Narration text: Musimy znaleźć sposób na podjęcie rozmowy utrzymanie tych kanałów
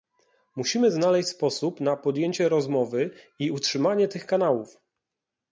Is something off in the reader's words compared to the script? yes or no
yes